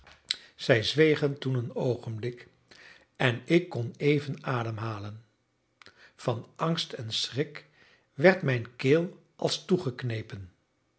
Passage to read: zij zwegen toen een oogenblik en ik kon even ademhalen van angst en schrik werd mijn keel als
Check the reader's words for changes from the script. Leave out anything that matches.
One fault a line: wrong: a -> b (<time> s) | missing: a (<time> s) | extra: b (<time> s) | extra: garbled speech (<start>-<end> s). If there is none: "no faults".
no faults